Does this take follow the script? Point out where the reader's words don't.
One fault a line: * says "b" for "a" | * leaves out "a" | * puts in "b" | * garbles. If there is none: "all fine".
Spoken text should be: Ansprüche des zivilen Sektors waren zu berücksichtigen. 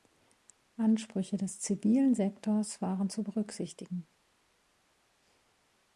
all fine